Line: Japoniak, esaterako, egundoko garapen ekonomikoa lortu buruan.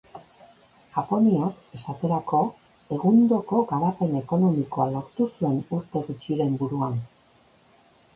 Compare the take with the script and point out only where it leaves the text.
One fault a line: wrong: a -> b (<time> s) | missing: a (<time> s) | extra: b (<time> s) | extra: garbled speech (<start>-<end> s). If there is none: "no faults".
extra: zuen urte gutxiren (5.3 s)